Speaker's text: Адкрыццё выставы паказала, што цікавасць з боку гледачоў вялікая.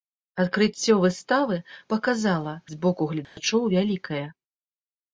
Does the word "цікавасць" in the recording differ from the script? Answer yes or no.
yes